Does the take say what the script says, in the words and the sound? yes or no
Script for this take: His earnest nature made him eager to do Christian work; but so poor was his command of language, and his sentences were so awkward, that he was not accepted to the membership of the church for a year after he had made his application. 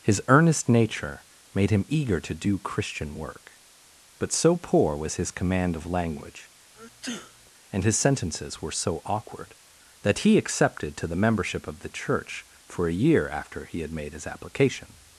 no